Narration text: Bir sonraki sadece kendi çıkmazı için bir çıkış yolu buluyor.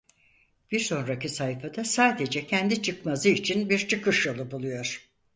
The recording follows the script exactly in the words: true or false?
false